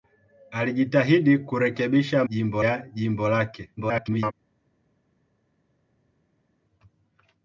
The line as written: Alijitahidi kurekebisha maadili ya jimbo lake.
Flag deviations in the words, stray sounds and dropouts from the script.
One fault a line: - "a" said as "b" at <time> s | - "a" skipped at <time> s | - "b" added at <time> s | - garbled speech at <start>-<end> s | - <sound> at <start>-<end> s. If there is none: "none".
- "maadili" said as "jimbo" at 2.3 s
- garbled speech at 3.8-4.3 s